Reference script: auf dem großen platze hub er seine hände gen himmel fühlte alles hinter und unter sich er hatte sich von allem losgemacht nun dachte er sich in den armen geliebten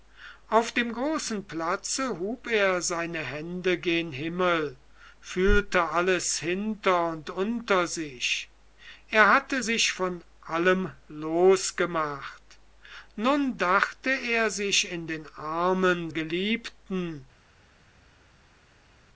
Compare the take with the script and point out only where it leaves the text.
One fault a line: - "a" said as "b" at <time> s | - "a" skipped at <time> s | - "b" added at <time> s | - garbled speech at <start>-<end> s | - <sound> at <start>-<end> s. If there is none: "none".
none